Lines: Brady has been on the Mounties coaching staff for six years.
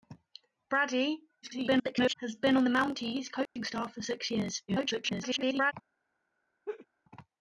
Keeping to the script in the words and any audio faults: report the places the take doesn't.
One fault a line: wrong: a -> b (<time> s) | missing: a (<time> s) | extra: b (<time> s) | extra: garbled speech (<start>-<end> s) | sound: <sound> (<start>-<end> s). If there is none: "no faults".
extra: garbled speech (1.4-2.1 s)
sound: dropout (3.5-3.6 s)
extra: garbled speech (4.7-5.7 s)
sound: laugh (6.7-6.9 s)